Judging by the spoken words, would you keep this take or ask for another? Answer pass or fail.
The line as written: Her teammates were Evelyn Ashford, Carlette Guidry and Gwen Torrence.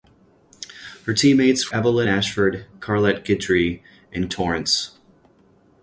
fail